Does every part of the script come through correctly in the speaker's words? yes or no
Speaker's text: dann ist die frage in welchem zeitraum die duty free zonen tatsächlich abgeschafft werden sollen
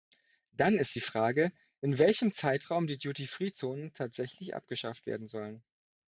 yes